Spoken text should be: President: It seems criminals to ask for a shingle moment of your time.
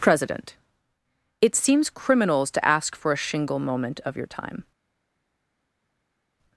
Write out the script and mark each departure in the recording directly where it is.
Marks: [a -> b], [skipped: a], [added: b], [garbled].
President: It seems criminals to ask for a shingle moment of your time.